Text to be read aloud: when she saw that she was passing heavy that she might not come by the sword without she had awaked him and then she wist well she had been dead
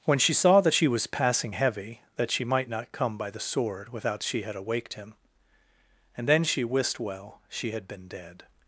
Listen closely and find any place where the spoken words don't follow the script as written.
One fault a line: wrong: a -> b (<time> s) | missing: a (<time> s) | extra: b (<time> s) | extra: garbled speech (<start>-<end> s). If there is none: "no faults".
no faults